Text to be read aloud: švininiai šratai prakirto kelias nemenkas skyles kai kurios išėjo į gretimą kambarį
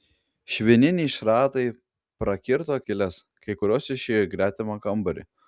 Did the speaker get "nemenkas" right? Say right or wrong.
wrong